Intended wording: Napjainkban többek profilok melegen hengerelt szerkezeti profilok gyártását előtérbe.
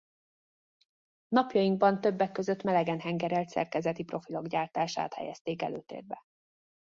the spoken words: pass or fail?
fail